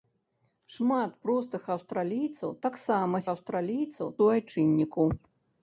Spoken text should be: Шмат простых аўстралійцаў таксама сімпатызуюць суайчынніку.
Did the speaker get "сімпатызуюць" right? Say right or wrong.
wrong